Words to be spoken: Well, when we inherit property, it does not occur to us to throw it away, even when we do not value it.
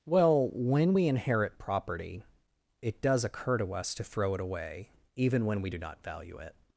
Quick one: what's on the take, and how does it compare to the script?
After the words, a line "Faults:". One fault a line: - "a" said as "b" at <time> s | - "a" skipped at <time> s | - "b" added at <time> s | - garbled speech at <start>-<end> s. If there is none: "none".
Well, when we inherit property, it does occur to us to throw it away, even when we do not value it.
Faults:
- "not" skipped at 3.2 s